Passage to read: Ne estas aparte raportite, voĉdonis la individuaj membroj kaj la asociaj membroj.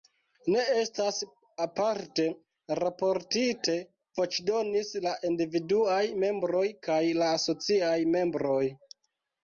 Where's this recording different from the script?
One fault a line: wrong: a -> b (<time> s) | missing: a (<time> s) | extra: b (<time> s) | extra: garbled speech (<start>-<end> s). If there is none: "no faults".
no faults